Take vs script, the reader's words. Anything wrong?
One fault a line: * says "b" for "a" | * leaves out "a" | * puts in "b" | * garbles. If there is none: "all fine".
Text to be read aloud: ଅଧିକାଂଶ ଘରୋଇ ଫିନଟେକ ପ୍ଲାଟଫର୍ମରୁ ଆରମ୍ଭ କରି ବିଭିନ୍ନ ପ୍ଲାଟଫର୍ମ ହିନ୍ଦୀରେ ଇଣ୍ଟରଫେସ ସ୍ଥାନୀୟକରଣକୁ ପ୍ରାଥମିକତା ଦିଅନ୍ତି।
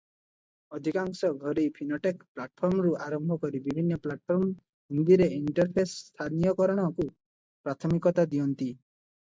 all fine